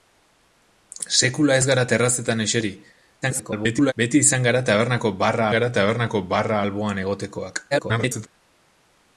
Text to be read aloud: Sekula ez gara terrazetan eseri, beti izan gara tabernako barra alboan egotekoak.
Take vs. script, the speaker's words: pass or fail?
fail